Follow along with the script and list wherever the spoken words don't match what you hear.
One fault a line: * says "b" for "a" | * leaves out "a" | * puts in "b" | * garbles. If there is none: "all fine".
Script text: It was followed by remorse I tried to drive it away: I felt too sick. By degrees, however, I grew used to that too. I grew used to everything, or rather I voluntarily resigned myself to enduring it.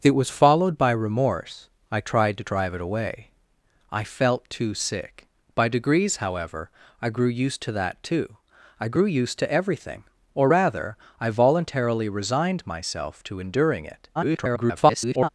* garbles